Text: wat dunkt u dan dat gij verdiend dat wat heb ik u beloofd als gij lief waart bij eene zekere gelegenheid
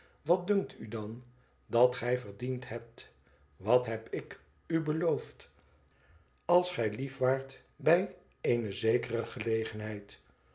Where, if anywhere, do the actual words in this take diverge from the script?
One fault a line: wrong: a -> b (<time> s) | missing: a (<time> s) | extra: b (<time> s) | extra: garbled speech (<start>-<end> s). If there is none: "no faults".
wrong: dat -> hebt (2.7 s)